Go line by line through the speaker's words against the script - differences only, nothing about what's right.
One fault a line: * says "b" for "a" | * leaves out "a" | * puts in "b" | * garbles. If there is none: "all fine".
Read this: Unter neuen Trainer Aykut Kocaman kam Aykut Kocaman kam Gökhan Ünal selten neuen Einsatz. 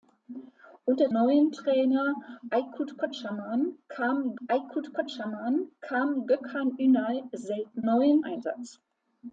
all fine